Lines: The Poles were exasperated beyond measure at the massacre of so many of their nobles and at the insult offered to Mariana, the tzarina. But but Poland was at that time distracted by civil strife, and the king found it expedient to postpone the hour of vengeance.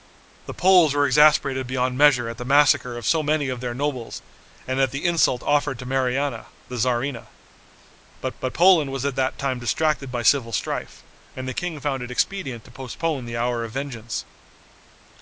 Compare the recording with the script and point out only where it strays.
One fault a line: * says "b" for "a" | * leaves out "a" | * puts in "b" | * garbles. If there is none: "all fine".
all fine